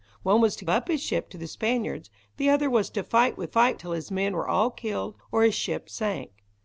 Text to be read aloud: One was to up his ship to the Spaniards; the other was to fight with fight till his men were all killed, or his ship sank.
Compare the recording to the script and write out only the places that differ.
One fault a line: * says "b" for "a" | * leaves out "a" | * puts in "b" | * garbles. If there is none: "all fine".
all fine